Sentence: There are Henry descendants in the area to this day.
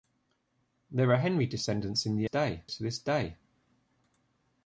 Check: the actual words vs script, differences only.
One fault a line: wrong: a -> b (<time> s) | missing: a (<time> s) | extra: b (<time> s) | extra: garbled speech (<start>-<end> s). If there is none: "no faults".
wrong: area -> day (2.2 s)